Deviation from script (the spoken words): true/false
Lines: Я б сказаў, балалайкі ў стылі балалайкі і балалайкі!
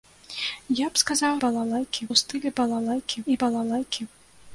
false